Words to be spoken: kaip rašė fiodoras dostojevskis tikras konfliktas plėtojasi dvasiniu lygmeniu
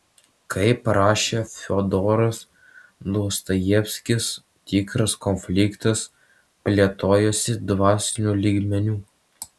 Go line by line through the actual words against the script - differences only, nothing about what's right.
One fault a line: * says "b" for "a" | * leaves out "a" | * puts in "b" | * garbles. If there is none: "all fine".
all fine